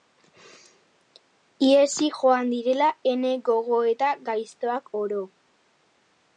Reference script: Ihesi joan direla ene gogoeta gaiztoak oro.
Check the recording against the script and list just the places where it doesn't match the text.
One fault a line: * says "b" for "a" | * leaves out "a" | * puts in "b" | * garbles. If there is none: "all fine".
all fine